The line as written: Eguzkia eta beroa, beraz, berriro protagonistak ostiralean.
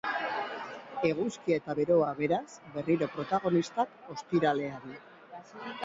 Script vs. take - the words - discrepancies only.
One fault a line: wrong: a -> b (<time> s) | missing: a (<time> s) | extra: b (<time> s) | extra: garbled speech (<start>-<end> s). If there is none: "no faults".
no faults